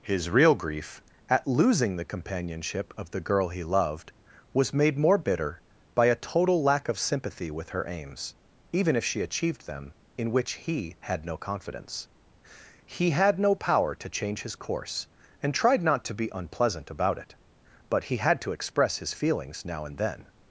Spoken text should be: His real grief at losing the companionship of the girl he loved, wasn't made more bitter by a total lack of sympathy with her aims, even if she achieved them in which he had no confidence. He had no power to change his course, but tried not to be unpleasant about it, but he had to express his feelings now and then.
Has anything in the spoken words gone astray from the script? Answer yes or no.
yes